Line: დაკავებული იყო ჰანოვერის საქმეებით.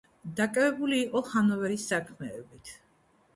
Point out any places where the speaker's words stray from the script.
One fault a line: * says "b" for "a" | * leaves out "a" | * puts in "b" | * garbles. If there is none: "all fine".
all fine